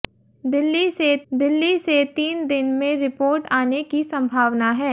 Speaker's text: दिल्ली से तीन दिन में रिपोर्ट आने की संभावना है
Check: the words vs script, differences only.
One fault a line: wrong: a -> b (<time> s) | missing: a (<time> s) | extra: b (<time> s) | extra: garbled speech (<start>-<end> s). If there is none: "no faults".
extra: दिल्ली से (1.3 s)